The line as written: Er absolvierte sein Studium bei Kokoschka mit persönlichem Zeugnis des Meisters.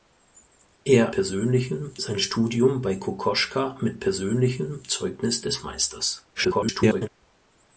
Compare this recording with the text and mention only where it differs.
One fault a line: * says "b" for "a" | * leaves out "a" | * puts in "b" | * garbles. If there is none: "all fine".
* says "persönlichem" for "absolvierte"
* garbles